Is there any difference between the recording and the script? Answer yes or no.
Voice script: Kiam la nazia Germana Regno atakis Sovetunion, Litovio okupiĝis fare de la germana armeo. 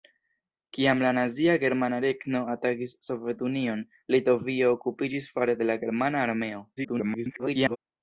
yes